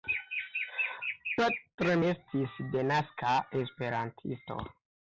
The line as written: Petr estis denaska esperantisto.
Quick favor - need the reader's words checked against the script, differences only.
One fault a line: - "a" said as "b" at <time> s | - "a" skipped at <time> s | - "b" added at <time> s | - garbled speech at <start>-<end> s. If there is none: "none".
none